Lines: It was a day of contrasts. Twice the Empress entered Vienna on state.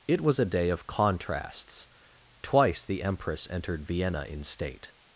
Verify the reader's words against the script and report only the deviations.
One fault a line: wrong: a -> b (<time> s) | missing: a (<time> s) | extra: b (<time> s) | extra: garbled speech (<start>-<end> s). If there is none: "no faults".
wrong: on -> in (4.2 s)